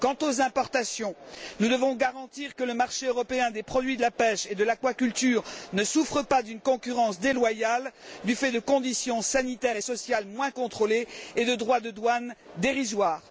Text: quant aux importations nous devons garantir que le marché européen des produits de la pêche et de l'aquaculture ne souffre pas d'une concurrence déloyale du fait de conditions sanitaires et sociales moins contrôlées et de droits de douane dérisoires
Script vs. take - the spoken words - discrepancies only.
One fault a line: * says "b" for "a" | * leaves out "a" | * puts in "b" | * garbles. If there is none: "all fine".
all fine